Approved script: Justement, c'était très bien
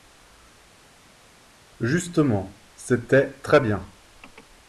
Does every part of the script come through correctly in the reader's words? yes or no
yes